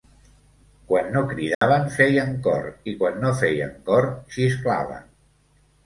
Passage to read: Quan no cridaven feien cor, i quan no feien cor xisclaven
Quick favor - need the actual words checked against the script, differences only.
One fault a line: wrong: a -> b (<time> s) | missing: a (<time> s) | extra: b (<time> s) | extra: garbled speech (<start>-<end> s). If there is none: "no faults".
no faults